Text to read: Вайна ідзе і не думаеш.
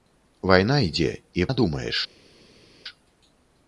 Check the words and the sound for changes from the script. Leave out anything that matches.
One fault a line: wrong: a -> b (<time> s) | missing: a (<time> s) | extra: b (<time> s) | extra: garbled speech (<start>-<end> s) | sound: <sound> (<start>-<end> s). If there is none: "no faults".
no faults